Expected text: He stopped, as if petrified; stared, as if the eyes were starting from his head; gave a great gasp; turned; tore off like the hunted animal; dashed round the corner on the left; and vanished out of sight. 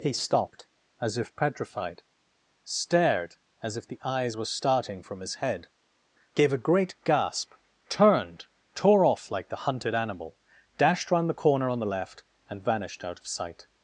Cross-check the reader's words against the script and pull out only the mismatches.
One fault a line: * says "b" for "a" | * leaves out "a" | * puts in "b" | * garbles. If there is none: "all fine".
all fine